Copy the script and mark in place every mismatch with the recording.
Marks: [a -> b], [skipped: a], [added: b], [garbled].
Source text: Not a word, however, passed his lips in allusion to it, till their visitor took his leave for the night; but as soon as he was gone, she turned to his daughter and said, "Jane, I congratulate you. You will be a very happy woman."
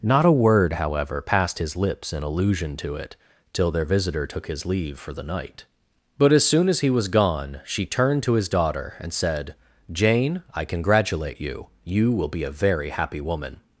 Not a word, however, passed his lips in allusion to it, till their visitor took his leave for the night; but as soon as he was gone, she turned to his daughter and said, "Jane, I congratulate you. You will be a very happy woman."